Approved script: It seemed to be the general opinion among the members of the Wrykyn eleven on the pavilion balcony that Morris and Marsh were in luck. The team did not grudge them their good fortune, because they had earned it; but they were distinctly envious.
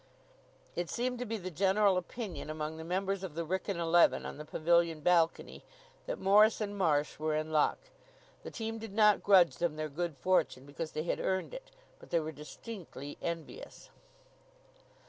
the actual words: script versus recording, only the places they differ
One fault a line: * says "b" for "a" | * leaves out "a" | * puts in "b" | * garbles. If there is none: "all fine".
all fine